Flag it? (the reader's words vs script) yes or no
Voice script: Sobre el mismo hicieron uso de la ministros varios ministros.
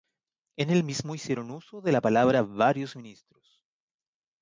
yes